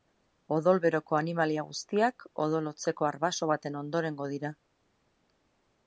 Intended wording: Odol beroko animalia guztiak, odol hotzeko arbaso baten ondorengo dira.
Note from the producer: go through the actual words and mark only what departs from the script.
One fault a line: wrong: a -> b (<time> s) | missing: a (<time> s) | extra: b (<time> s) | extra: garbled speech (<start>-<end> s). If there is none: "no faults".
no faults